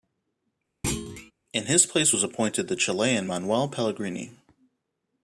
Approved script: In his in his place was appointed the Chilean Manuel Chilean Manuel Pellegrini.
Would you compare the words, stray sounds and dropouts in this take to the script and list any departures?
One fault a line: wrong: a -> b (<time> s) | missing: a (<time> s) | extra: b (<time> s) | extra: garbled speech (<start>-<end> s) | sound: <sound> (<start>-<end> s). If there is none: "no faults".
sound: thud (0.8-1.3 s)
missing: in his (1.9 s)
missing: Chilean Manuel (3.7 s)